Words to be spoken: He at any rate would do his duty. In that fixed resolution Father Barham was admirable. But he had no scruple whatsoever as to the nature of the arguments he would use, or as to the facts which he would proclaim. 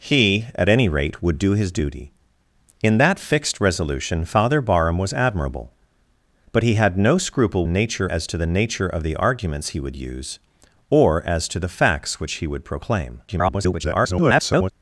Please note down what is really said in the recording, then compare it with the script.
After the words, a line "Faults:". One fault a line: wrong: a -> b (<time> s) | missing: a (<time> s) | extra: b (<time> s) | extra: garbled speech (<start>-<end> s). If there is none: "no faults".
He at any rate would do his duty. In that fixed resolution Father Barham was admirable. But he had no scruple nature as to the nature of the arguments he would use, or as to the facts which he would proclaim. [garbled]
Faults:
wrong: whatsoever -> nature (7.7 s)
extra: garbled speech (13.3-14.7 s)